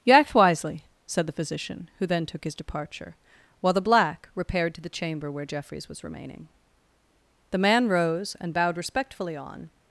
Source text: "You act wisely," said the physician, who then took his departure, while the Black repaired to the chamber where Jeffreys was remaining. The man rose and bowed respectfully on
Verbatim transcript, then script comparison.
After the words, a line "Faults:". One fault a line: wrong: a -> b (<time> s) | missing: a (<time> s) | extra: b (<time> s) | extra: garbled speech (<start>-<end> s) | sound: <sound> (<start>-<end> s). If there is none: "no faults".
"You act wisely," said the physician, who then took his departure, while the Black repaired to the chamber where Jeffreys was remaining. The man rose and bowed respectfully on
Faults:
no faults